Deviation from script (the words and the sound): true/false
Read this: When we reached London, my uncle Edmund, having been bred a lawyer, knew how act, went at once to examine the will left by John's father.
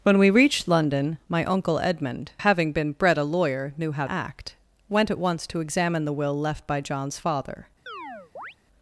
true